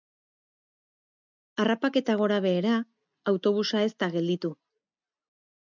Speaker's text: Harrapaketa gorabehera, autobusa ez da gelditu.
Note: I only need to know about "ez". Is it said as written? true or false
true